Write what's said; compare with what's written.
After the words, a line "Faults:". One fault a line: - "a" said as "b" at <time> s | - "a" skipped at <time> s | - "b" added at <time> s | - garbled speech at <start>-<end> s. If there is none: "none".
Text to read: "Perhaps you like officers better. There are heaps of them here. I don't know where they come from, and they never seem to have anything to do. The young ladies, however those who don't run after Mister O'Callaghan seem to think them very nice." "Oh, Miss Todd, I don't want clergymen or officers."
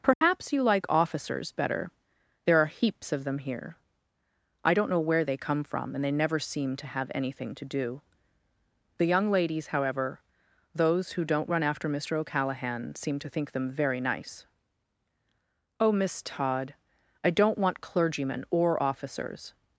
"Perhaps you like officers better. There are heaps of them here. I don't know where they come from, and they never seem to have anything to do. The young ladies, however those who don't run after Mister O'Callaghan seem to think them very nice." "Oh, Miss Todd, I don't want clergymen or officers."
Faults:
none